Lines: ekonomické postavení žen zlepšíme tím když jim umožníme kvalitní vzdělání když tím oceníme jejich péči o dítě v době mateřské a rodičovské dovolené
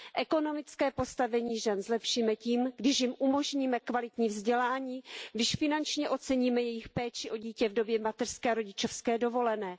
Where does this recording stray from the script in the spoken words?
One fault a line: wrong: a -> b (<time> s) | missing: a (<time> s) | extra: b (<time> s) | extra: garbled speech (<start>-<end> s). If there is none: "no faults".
wrong: tím -> finančně (5.5 s)